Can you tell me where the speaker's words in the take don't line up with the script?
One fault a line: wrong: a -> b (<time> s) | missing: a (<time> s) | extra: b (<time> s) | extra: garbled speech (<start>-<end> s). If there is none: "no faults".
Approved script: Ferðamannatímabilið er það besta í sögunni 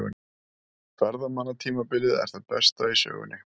no faults